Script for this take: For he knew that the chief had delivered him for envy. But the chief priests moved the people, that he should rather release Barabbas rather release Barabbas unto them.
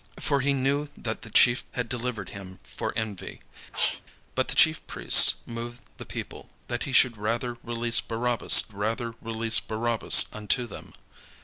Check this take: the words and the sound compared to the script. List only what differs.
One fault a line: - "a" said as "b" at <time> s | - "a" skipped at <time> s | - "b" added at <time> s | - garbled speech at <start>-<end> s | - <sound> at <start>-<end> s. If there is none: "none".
- sneeze at 3.7-4.0 s